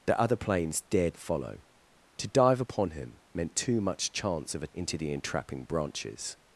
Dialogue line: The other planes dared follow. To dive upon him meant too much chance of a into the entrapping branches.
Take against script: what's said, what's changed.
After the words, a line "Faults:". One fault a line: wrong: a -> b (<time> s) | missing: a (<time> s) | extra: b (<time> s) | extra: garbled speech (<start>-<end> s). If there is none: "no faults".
The other planes dared follow. To dive upon him meant too much chance of a into the entrapping branches.
Faults:
no faults